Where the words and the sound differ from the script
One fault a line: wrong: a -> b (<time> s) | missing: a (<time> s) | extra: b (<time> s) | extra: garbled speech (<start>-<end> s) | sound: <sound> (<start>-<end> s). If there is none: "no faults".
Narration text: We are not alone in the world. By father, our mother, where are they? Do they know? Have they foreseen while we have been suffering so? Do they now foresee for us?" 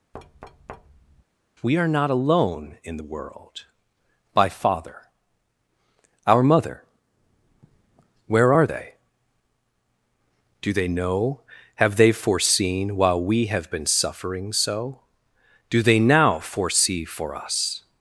sound: thud (0.1-1.2 s)